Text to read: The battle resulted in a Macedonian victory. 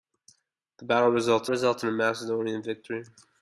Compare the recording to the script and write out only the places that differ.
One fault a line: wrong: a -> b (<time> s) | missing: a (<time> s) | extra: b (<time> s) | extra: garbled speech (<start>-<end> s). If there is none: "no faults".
extra: resulted (1.5 s)